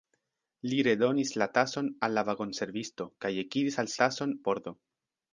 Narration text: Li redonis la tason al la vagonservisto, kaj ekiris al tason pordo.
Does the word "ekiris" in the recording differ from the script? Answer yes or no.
no